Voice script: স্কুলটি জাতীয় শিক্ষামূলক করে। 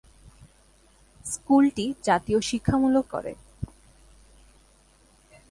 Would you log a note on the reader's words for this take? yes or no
no